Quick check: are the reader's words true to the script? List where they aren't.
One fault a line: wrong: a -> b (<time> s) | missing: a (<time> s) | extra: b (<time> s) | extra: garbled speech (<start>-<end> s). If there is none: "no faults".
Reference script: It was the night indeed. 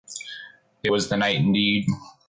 no faults